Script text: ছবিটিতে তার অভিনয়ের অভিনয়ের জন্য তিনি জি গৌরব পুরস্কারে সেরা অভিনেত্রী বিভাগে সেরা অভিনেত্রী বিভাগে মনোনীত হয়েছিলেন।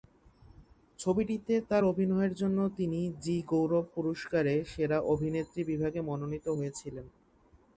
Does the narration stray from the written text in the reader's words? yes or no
yes